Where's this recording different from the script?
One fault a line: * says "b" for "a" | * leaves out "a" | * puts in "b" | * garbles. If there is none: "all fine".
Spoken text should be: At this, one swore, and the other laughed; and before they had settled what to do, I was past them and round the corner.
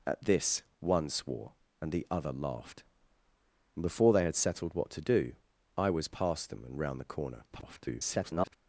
* garbles